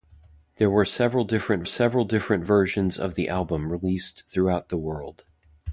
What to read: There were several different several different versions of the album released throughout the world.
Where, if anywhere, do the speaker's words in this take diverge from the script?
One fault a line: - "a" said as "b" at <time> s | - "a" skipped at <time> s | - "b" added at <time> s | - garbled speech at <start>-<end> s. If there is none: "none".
none